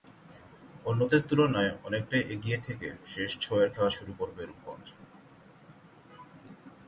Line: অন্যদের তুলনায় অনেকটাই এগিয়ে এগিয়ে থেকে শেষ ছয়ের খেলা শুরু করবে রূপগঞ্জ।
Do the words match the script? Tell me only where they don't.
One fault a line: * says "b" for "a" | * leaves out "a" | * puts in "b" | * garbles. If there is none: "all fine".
* leaves out "এগিয়ে"